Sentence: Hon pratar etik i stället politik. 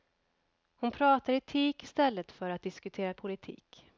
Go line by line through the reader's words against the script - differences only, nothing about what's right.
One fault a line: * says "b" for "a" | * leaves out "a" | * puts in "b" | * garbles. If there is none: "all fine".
* puts in "för att diskutera"